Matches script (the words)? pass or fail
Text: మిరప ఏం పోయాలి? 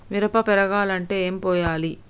fail